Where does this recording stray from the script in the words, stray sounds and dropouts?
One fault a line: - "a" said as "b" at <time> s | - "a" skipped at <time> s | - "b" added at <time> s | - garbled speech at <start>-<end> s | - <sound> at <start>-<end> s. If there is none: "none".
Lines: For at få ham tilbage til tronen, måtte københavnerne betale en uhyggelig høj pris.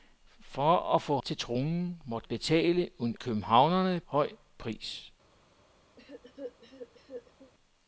- "ham tilbage" skipped at 1.2 s
- "københavnerne" skipped at 2.3 s
- "uhyggelig" said as "københavnerne" at 3.2 s
- cough at 6.0-7.5 s